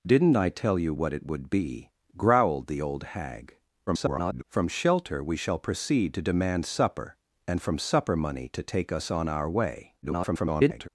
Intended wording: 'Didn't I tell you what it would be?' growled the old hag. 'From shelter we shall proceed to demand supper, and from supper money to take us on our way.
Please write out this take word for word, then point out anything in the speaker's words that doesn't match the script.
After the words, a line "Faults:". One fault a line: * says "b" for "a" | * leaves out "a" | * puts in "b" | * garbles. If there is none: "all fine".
'Didn't I tell you what it would be?' growled the old hag. [garbled] 'From shelter we shall proceed to demand supper, and from supper money to take us on our way. [garbled]
Faults:
* garbles
* garbles